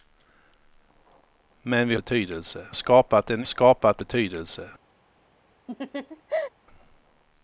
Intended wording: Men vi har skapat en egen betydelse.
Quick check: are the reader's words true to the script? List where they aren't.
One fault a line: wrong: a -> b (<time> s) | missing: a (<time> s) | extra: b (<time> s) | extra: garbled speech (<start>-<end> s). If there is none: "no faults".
wrong: har -> betydelse (2.0 s)
wrong: egen -> skapat (3.4 s)